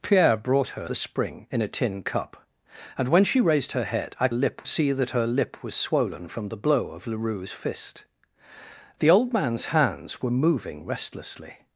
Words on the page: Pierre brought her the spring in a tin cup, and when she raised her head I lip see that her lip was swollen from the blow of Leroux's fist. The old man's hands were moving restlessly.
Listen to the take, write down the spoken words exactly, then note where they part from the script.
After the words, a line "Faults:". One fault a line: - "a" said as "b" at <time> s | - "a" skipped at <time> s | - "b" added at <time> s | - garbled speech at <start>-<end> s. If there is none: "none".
Pierre brought her the spring in a tin cup, and when she raised her head I lip see that her lip was swollen from the blow of Leroux's fist. The old man's hands were moving restlessly.
Faults:
none